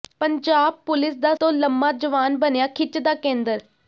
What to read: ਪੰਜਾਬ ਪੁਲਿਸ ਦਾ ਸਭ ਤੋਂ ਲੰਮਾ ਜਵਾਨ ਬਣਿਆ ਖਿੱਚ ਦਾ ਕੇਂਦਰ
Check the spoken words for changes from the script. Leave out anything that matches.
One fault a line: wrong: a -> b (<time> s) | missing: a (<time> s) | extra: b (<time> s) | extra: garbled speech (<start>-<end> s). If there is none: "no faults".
missing: ਸਭ (1.3 s)